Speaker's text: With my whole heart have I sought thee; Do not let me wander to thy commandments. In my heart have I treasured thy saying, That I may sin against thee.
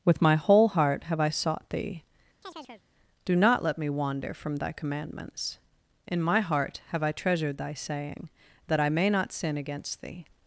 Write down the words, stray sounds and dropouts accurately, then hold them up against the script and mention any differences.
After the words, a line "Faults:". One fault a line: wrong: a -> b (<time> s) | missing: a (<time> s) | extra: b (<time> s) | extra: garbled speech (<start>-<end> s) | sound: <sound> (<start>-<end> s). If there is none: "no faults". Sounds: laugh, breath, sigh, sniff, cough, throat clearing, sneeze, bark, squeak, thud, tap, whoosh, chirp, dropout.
With my whole heart have I sought thee; Do not let me wander from thy commandments. In my heart have I treasured thy saying, That I may not sin against thee.
Faults:
sound: chirp (2.4-2.8 s)
wrong: to -> from (4.3 s)
extra: not (9.1 s)